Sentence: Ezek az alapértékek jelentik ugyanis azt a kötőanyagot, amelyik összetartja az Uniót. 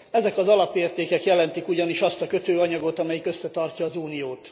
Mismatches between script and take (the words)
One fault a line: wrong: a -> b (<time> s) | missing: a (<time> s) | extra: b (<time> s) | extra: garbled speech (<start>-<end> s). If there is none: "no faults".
no faults